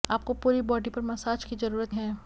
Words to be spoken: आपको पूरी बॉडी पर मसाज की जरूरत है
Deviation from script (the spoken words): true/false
false